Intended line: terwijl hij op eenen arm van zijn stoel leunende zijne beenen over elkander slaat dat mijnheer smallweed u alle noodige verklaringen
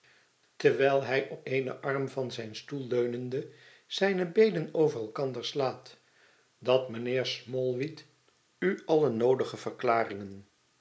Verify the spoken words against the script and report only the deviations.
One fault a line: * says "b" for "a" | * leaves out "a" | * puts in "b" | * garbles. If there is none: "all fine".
all fine